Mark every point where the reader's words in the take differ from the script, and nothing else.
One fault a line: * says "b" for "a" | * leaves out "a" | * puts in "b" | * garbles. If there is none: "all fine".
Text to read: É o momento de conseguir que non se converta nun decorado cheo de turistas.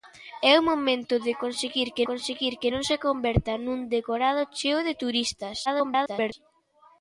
* puts in "conseguir que"
* garbles